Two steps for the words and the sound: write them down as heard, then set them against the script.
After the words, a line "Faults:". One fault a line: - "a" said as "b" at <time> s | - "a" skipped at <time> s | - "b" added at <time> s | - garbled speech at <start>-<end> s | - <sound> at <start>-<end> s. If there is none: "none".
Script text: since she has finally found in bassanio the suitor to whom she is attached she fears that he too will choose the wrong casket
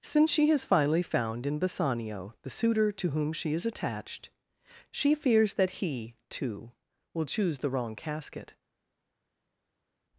since she has finally found in bassanio the suitor to whom she is attached she fears that he too will choose the wrong casket
Faults:
none